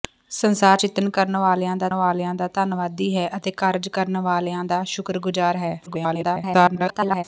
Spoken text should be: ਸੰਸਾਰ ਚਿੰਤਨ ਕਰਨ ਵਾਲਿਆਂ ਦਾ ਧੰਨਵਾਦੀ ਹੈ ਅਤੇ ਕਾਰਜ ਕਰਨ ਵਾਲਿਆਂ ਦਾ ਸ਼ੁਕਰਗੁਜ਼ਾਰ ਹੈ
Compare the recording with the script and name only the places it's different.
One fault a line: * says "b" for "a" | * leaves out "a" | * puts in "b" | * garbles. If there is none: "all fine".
* puts in "ਵਾਲਿਆਂ ਦਾ"
* garbles